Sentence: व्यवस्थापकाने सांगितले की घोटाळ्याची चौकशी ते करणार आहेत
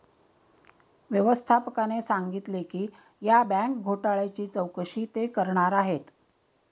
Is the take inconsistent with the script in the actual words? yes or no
yes